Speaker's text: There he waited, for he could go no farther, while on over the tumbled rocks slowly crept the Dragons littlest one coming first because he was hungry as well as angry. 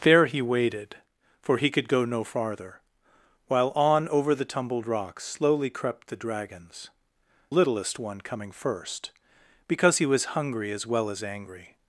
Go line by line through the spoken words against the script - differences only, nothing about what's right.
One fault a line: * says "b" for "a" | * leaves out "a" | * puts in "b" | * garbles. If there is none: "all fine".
all fine